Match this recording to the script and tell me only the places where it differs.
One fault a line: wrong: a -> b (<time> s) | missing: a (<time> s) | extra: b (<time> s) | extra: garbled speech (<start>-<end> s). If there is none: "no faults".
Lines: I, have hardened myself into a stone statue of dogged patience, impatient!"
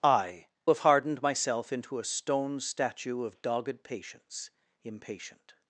no faults